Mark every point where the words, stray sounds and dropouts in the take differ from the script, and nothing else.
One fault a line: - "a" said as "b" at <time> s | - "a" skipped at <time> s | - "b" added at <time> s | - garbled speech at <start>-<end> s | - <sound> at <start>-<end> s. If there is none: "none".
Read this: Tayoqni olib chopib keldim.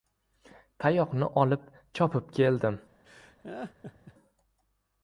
- laugh at 3.0-4.1 s